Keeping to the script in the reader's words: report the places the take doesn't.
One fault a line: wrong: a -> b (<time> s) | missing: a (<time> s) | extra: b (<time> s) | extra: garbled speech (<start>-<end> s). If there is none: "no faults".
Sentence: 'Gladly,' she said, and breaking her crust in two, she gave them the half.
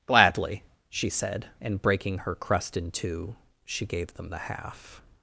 no faults